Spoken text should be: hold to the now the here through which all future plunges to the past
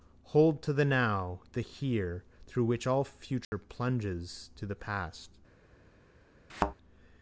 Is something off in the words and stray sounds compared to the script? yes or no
yes